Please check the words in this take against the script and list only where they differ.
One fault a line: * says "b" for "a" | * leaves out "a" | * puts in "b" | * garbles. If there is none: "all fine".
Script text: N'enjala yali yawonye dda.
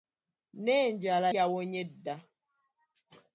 * leaves out "yali"